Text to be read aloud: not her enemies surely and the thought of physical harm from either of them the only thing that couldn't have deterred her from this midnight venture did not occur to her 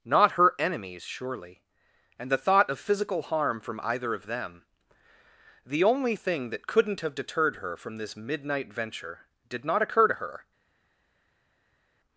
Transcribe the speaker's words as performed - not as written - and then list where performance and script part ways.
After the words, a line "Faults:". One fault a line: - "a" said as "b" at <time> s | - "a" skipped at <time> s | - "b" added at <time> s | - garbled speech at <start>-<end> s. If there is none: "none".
not her enemies surely and the thought of physical harm from either of them the only thing that couldn't have deterred her from this midnight venture did not occur to her
Faults:
none